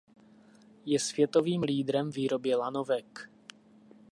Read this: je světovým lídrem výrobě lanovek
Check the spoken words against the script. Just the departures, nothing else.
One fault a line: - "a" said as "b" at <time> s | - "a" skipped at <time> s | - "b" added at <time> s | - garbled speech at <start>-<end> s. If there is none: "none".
none